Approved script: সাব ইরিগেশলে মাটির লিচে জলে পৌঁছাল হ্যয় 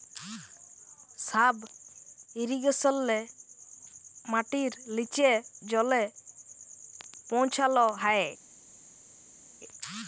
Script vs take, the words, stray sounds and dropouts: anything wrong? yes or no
no